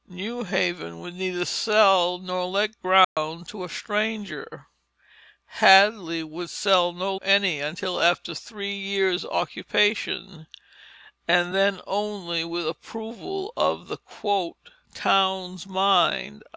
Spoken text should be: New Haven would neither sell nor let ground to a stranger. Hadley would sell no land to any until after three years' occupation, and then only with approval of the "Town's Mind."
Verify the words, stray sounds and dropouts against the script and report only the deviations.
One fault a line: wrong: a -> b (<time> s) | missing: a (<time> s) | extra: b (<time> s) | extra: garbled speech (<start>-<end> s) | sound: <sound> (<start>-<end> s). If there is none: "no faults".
sound: dropout (3.0-3.2 s)
missing: land to (7.2 s)